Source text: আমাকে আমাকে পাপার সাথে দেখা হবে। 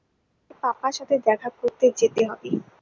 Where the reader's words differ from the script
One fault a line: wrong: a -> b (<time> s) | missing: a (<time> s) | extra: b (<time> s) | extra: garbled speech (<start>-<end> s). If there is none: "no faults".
missing: আমাকে (0.5 s)
extra: করতে যেতে (1.6 s)